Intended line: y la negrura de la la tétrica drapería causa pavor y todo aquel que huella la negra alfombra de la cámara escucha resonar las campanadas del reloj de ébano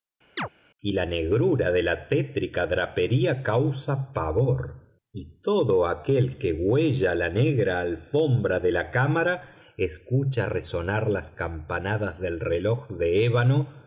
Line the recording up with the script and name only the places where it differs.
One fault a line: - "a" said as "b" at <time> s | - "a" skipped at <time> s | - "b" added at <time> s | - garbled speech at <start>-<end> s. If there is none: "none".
- "la" skipped at 2.1 s